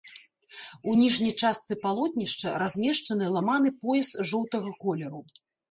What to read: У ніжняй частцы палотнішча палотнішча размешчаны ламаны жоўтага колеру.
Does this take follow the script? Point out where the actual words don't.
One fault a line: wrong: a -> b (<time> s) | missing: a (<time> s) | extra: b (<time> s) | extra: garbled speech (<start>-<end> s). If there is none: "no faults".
missing: палотнішча (2.6 s)
extra: пояс (3.9 s)